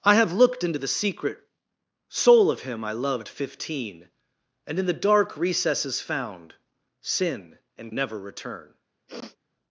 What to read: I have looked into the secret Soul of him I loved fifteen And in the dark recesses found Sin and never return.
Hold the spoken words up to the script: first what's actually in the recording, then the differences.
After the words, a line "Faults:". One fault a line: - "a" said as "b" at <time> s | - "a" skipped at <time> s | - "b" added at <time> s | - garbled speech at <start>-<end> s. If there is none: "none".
I have looked into the secret Soul of him I loved fifteen And in the dark recesses found Sin and never return.
Faults:
none